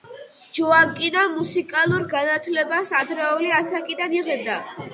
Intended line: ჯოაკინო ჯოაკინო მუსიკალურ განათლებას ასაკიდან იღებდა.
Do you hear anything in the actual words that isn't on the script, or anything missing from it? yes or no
yes